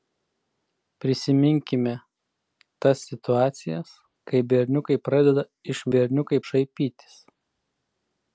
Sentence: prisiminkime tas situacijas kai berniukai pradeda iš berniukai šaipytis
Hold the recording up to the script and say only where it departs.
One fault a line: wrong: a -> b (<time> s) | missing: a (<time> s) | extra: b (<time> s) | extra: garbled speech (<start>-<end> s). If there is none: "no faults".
no faults